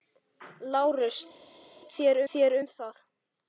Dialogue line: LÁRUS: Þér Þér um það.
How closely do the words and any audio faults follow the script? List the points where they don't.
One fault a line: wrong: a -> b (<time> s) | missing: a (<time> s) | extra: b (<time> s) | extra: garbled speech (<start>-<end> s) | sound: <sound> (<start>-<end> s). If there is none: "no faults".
no faults